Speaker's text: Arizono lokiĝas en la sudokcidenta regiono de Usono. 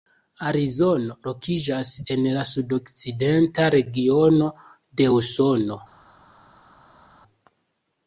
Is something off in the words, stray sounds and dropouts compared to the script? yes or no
no